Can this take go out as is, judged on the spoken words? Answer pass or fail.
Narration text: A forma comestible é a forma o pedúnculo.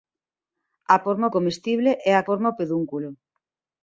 pass